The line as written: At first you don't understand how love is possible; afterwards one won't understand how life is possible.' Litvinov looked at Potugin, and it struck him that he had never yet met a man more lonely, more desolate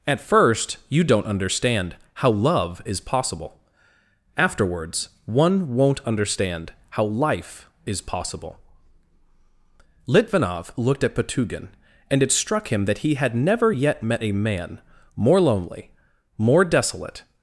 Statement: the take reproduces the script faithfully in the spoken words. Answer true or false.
true